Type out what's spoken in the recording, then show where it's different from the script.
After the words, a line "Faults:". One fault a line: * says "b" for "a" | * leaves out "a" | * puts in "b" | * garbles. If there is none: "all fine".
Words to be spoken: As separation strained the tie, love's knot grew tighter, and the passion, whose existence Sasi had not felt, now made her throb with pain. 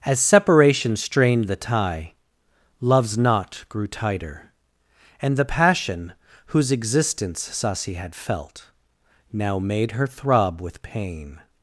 As separation strained the tie, love's knot grew tighter, and the passion, whose existence Sasi had felt, now made her throb with pain.
Faults:
* leaves out "not"